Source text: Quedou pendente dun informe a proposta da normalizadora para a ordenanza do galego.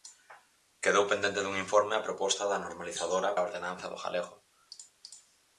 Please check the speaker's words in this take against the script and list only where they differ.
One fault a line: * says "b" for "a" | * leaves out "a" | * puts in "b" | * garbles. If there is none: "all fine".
* leaves out "para"